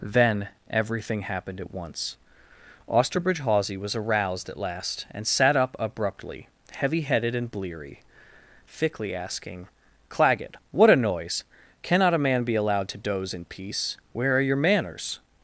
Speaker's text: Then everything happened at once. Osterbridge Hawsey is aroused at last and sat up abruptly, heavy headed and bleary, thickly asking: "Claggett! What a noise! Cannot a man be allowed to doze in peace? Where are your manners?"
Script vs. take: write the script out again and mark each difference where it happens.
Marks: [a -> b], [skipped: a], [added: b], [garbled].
Then everything happened at once. Osterbridge Hawsey [is -> was] aroused at last and sat up abruptly, heavy headed and bleary, thickly asking: "Claggett! What a noise! Cannot a man be allowed to doze in peace? Where are your manners?"